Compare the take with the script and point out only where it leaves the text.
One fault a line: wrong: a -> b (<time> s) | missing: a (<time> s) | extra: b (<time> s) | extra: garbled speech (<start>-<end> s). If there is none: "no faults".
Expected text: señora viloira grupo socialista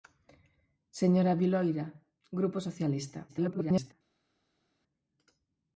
extra: garbled speech (3.3-3.9 s)